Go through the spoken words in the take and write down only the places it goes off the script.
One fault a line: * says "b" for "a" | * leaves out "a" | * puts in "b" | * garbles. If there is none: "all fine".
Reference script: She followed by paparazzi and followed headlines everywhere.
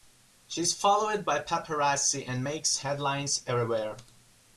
* puts in "is"
* says "makes" for "followed"